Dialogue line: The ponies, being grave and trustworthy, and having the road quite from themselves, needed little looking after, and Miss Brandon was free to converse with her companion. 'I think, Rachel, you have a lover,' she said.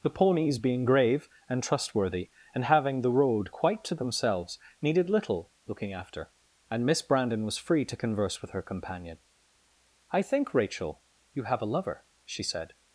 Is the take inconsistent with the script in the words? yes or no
yes